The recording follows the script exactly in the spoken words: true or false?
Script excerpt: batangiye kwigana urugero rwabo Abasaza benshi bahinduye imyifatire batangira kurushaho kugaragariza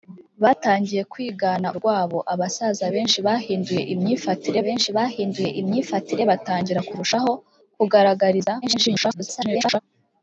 false